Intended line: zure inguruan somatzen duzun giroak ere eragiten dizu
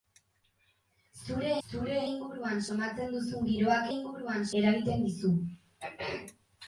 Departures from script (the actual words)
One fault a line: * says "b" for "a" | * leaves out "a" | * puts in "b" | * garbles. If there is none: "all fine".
* puts in "zure"
* says "inguruan" for "ere"